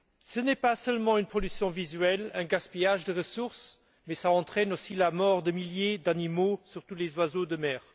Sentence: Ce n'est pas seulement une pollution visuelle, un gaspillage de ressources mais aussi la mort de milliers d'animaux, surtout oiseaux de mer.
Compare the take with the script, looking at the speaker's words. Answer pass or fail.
fail